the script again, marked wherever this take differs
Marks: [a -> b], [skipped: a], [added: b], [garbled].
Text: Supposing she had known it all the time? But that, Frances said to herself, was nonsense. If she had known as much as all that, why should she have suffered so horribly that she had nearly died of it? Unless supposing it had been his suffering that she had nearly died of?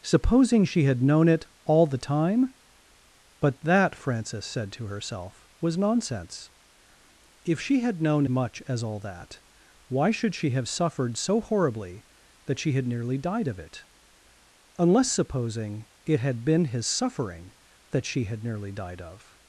Supposing she had known it all the time? But that, Frances said to herself, was nonsense. If she had known [skipped: as] much as all that, why should she have suffered so horribly that she had nearly died of it? Unless supposing it had been his suffering that she had nearly died of?